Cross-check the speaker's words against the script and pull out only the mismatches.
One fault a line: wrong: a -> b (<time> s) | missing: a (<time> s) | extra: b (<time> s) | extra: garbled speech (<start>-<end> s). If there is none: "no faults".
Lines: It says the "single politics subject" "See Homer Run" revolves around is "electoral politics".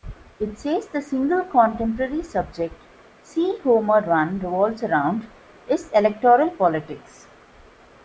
wrong: politics -> contemporary (1.4 s)